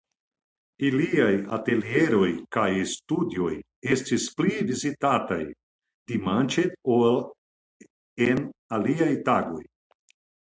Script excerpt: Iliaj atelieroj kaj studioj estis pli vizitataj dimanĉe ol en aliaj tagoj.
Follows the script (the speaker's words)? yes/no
yes